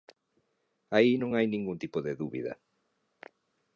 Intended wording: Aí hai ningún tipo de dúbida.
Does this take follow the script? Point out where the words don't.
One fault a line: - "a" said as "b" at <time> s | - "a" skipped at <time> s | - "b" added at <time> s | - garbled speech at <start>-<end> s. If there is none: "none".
- "non" added at 1.2 s